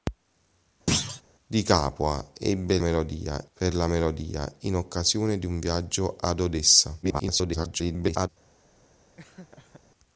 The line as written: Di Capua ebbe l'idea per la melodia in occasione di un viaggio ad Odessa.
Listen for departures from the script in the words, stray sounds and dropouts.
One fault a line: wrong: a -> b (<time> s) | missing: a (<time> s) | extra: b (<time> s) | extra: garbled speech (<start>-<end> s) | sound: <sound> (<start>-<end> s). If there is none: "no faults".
sound: thud (0.9-1.2 s)
wrong: l'idea -> melodia (2.8 s)
extra: garbled speech (7.0-8.3 s)
sound: laugh (9.2-9.8 s)